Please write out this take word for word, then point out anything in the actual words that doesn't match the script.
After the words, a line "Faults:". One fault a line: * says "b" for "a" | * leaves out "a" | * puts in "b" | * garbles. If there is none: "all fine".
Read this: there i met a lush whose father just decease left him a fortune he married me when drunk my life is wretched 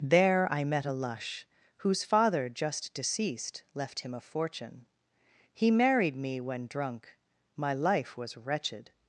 there i met a lush whose father just deceased left him a fortune he married me when drunk my life was wretched
Faults:
* says "deceased" for "decease"
* says "was" for "is"